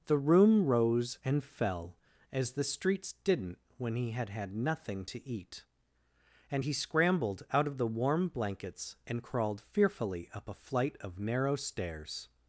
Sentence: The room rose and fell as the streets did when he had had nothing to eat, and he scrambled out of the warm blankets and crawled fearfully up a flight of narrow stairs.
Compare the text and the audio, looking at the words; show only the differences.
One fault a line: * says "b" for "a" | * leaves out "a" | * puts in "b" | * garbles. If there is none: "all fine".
* says "didn't" for "did"